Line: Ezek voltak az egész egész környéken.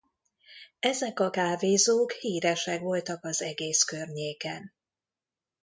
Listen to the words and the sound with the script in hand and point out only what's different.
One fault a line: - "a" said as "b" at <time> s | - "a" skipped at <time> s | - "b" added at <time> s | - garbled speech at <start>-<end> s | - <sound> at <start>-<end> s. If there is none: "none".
- "a kávézók híresek" added at 1.2 s
- "egész" skipped at 3.8 s